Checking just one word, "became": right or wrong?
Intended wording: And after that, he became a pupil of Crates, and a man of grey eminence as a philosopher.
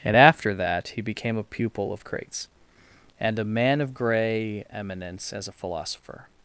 right